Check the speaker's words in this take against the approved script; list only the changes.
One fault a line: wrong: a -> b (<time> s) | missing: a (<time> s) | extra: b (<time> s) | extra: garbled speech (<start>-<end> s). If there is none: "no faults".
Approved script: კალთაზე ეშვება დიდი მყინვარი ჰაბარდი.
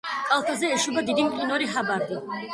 no faults